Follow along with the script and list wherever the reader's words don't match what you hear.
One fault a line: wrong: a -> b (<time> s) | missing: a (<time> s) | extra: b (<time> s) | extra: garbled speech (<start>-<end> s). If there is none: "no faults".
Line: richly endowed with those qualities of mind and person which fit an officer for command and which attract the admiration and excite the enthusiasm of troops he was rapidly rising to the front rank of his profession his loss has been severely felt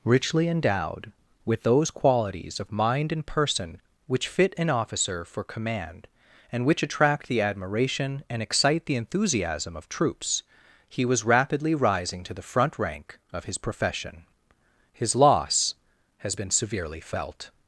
no faults